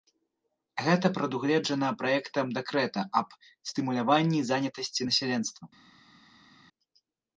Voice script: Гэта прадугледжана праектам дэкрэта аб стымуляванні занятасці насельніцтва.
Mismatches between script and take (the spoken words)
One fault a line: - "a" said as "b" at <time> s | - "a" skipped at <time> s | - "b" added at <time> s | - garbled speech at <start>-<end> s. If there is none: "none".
none